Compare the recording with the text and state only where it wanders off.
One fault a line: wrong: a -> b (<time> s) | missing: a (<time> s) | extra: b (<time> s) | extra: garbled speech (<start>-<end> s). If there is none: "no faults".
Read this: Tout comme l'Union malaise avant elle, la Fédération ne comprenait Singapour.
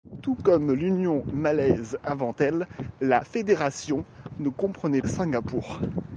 no faults